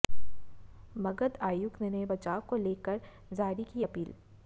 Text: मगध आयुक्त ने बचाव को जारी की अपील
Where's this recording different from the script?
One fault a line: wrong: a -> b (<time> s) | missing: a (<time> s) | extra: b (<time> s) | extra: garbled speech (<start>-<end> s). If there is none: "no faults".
extra: लेकर (2.6 s)